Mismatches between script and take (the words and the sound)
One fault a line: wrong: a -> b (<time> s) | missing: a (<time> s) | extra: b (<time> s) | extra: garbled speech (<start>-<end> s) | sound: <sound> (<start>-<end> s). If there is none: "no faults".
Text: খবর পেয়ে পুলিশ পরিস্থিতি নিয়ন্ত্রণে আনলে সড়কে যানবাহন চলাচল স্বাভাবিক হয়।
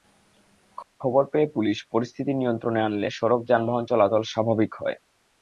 no faults